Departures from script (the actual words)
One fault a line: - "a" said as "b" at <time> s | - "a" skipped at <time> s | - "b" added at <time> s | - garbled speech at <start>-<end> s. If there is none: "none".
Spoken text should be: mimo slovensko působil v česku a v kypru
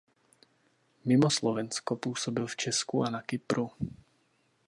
- "v" said as "na" at 3.1 s